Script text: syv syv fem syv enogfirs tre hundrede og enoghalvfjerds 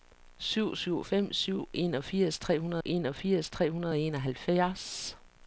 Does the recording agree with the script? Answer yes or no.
no